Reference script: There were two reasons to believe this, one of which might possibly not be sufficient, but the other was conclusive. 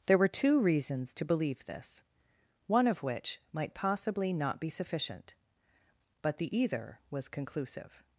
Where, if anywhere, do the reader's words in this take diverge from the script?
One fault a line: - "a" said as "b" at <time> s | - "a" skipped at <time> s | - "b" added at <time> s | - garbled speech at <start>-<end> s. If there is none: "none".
- "other" said as "either" at 6.6 s